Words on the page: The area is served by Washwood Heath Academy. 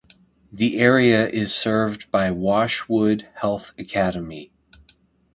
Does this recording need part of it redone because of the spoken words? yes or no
no